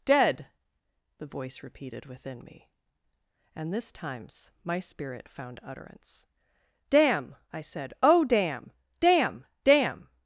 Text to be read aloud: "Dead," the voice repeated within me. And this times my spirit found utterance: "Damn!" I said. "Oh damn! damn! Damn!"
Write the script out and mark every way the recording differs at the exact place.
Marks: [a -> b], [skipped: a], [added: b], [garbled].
"Dead," the voice repeated within me. And this times my spirit found utterance: "Damn!" I said. "Oh damn! damn! Damn!"